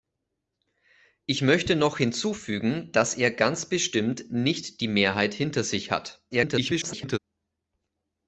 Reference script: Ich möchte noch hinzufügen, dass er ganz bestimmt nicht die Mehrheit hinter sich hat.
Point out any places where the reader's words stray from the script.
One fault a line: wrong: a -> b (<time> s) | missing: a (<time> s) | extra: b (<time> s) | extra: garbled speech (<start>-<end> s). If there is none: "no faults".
extra: garbled speech (6.3-7.2 s)